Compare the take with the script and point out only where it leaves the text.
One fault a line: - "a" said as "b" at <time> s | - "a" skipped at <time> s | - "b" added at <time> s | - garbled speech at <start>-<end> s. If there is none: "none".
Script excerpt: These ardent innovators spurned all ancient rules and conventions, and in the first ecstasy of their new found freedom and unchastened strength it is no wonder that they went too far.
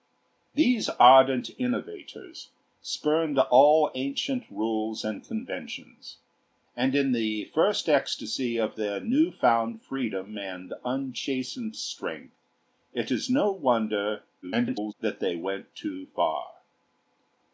- garbled speech at 14.4-14.9 s